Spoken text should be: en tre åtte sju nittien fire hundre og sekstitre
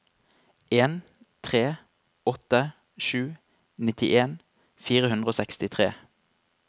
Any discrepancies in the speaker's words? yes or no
no